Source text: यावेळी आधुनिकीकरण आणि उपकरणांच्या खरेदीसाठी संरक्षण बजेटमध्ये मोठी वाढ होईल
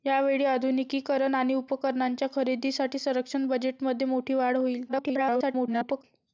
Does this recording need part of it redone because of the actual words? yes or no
yes